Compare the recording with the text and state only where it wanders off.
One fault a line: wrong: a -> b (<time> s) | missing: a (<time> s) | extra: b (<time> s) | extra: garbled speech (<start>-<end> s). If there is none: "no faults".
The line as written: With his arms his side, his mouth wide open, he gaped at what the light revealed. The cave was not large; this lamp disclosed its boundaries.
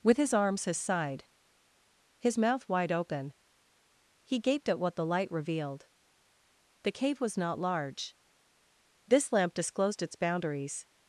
no faults